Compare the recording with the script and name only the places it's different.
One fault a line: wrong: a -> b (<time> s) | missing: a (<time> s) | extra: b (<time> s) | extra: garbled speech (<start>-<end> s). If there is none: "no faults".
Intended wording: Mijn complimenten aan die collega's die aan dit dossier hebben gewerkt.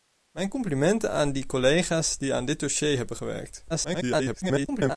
extra: garbled speech (3.7-5.0 s)